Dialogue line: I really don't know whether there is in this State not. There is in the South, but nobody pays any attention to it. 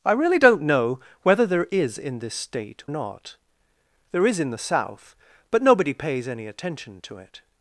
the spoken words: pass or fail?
pass